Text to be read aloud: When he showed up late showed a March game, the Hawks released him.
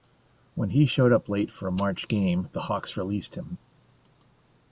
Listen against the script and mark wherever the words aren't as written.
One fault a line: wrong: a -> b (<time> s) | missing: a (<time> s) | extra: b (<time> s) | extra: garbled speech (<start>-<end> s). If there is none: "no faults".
wrong: showed -> for (1.5 s)